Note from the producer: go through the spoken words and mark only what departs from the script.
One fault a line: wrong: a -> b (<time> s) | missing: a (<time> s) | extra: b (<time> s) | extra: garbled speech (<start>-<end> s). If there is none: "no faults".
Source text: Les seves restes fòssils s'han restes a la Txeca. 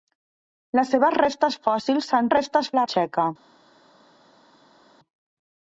no faults